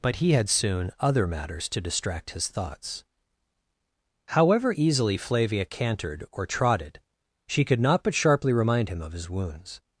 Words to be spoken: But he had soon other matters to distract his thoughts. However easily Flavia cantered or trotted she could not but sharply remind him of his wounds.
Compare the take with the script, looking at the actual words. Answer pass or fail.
pass